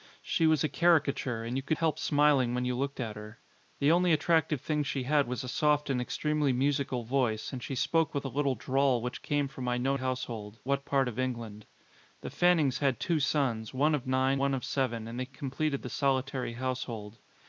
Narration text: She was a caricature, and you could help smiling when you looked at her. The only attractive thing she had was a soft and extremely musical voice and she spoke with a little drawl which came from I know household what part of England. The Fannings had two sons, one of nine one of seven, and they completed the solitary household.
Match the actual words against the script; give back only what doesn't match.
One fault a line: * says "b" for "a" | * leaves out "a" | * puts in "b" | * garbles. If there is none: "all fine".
all fine